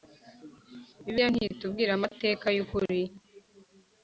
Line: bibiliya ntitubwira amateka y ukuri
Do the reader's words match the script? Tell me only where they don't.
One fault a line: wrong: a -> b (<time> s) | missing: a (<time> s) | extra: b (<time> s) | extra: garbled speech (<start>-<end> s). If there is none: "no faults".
no faults